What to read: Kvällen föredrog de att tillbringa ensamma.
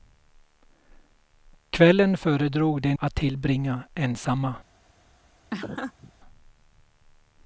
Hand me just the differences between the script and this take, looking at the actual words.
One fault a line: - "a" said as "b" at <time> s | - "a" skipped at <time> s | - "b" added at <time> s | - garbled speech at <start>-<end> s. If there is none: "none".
none